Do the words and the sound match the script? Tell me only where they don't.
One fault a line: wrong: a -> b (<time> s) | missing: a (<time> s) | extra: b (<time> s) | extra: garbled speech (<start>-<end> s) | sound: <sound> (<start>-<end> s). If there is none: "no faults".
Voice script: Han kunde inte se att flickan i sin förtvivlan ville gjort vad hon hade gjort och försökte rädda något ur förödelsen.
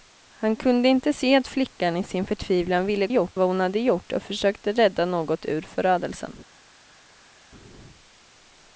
no faults